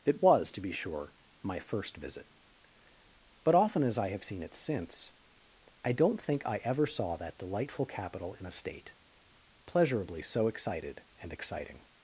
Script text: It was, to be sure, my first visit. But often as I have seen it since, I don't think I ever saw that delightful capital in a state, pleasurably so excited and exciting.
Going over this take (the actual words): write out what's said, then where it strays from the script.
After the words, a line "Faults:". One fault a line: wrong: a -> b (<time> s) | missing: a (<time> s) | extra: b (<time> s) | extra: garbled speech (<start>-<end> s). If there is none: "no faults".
It was, to be sure, my first visit. But often as I have seen it since, I don't think I ever saw that delightful capital in a state, pleasurably so excited and exciting.
Faults:
no faults